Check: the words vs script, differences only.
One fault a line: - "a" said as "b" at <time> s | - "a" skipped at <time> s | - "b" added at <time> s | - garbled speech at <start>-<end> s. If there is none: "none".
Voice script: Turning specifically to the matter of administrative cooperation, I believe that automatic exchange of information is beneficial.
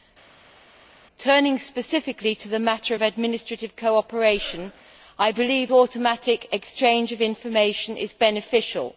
- "that" skipped at 5.7 s